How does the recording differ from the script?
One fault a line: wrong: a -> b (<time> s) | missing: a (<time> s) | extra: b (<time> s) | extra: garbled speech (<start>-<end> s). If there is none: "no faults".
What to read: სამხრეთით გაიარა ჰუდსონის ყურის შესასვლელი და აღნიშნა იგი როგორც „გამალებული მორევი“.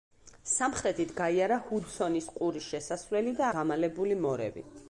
missing: აღნიშნა იგი როგორც (3.5 s)